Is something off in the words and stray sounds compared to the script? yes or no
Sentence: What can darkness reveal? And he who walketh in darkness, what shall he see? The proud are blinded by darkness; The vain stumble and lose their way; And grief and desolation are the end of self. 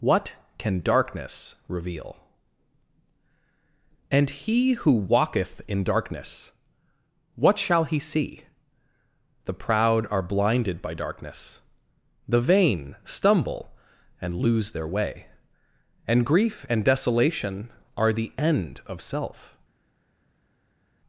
no